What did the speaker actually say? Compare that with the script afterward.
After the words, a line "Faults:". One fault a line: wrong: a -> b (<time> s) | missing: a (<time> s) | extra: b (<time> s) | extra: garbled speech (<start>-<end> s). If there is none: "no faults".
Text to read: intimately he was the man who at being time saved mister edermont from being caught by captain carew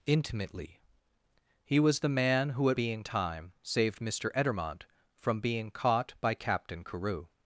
intimately he was the man who at being time saved mister edermont from being caught by captain carew
Faults:
no faults